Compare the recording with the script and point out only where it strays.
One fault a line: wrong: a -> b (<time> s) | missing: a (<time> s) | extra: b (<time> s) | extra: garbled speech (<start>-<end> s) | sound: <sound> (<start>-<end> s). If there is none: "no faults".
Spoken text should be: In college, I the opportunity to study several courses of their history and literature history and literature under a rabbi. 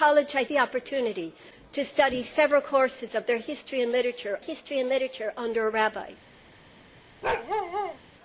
sound: bark (7.2-8.0 s)